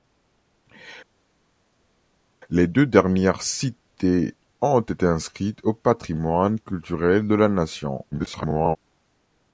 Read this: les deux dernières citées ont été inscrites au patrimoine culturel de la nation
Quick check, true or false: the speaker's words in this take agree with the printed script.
false